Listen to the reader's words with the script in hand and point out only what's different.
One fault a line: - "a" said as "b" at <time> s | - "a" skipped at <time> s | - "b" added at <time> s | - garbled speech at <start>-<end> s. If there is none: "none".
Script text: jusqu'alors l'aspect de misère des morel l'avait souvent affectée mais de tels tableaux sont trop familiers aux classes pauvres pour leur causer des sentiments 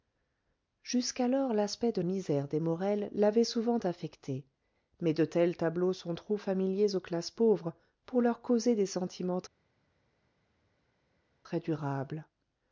none